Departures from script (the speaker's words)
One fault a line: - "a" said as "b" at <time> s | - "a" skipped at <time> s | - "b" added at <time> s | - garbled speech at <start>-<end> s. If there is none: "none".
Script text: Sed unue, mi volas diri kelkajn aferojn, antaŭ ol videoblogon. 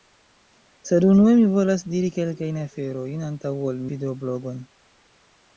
none